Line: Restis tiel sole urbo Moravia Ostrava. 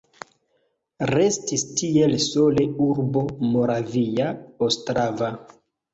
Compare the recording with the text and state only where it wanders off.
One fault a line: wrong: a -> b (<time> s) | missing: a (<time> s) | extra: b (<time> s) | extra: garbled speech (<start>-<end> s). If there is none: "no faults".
no faults